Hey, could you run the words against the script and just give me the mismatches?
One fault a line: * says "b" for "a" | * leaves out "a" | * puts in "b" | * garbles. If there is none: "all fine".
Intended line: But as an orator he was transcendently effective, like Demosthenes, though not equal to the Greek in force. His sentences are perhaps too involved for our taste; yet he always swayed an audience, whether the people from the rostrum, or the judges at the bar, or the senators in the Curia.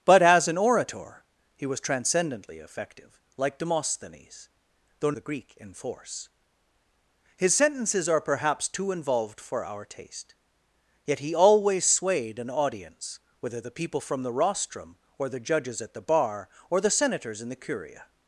* leaves out "not equal to"